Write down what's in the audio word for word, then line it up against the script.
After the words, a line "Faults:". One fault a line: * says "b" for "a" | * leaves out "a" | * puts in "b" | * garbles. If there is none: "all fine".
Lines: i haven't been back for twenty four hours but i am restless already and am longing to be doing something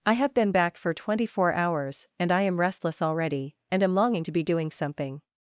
i have been back for twenty four hours and i am restless already and am longing to be doing something
Faults:
* says "have" for "haven't"
* says "and" for "but"